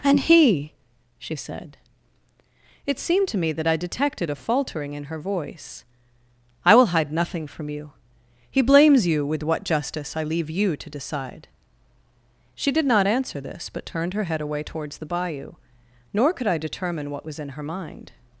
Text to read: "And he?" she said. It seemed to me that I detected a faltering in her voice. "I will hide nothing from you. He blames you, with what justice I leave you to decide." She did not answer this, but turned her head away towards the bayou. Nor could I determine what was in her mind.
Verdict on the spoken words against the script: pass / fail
pass